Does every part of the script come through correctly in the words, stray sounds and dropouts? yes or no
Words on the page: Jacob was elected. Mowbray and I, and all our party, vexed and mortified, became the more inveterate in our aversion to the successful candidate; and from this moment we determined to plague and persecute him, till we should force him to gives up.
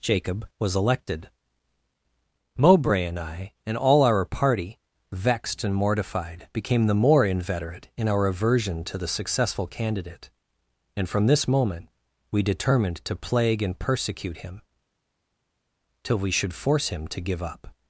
no